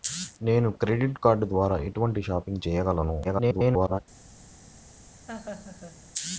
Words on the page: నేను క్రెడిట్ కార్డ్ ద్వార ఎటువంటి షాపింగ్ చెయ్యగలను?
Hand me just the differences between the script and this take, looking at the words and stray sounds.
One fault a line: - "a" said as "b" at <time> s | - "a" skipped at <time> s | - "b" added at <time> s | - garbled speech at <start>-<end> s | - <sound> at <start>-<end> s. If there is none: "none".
- garbled speech at 3.2-4.0 s
- laugh at 5.3-6.0 s